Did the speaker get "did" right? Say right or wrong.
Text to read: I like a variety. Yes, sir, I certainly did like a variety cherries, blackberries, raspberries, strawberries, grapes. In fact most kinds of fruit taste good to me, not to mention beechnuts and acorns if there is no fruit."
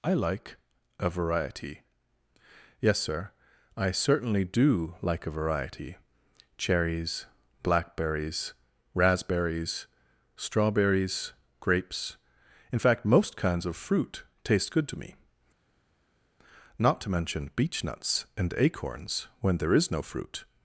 wrong